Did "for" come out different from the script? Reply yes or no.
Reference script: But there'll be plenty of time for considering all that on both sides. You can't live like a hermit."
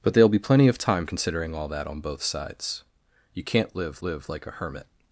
yes